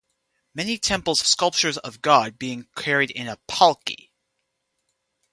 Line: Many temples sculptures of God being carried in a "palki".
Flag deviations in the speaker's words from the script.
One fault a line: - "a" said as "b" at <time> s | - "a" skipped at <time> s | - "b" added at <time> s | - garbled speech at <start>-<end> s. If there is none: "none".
none